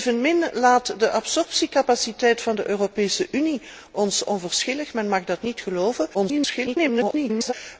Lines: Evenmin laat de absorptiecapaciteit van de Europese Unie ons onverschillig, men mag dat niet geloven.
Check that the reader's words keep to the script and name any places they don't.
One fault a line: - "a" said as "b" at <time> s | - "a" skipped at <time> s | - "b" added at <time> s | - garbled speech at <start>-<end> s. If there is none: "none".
- garbled speech at 6.1-7.5 s